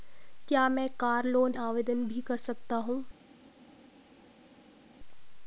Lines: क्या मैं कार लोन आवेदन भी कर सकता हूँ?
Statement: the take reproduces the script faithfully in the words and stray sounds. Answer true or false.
true